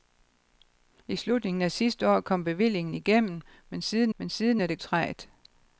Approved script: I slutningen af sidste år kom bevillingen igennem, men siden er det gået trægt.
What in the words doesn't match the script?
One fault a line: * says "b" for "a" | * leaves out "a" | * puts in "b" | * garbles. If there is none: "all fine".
* puts in "men siden"
* leaves out "gået"